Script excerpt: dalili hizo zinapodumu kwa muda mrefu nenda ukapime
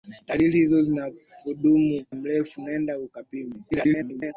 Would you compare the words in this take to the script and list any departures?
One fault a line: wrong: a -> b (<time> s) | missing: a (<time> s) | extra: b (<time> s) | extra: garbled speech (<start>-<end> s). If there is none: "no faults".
missing: kwa muda (2.0 s)
extra: garbled speech (3.7-4.3 s)